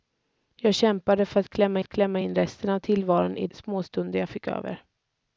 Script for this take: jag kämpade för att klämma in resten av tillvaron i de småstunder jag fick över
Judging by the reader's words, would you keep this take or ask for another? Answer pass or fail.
fail